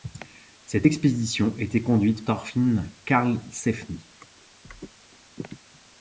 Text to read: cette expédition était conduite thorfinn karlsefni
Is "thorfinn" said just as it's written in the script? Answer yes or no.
yes